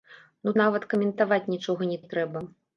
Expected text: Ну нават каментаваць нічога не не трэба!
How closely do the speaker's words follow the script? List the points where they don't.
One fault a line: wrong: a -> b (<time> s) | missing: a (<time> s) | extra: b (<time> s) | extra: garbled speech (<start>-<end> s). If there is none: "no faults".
no faults